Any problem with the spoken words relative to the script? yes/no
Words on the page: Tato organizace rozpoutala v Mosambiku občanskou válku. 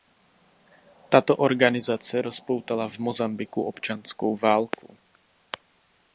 no